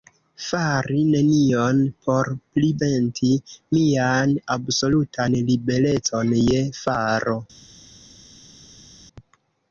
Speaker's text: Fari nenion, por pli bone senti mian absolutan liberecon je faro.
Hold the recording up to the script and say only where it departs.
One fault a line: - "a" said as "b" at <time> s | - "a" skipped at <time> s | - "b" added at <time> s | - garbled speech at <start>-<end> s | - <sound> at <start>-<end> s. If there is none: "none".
- "bone" skipped at 2.7 s